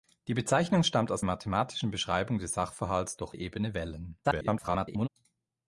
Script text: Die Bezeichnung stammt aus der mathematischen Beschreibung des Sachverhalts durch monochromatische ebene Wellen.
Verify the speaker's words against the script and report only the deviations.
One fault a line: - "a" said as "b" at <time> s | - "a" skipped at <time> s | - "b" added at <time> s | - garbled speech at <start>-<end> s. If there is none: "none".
- "der" skipped at 1.2 s
- "monochromatische" skipped at 3.4 s
- garbled speech at 4.2-5.1 s